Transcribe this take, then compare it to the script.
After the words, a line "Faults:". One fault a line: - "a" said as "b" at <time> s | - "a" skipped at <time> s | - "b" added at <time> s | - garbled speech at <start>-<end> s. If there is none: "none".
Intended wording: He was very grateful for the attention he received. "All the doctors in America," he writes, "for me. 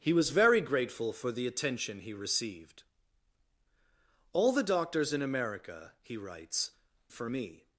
He was very grateful for the attention he received. "All the doctors in America," he writes, "for me.
Faults:
none